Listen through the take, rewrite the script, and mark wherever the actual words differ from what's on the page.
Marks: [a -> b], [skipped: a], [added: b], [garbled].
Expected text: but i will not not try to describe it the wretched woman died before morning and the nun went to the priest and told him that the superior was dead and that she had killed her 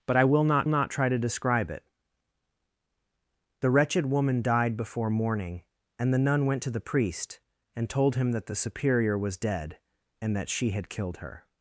but i will not not try to describe it the wretched woman died before morning and the nun went to the priest and told him that the superior was dead and that she had killed her